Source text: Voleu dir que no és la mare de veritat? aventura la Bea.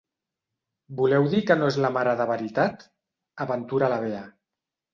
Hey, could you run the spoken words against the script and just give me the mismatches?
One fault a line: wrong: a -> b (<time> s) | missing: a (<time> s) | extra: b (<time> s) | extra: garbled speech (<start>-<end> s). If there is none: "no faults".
no faults